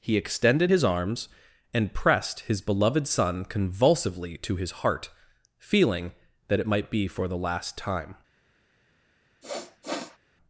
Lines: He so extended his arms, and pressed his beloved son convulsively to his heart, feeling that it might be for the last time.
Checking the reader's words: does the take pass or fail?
fail